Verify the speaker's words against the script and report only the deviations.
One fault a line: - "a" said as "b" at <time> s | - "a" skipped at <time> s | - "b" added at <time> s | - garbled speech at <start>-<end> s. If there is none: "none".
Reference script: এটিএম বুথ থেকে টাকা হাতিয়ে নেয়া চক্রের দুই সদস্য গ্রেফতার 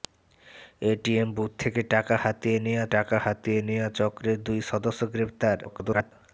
- "টাকা হাতিয়ে নেয়া" added at 2.9 s
- garbled speech at 5.6-6.1 s